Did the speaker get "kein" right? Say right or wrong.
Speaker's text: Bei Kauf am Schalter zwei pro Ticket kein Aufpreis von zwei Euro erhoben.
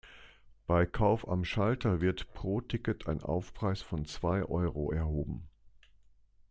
wrong